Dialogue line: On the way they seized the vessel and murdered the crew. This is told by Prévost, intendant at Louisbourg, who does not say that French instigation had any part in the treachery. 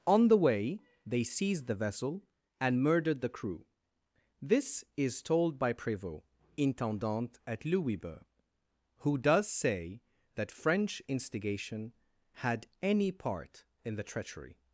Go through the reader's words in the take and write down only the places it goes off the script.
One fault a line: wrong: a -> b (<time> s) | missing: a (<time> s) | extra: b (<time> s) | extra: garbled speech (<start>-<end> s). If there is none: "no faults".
missing: not (9.5 s)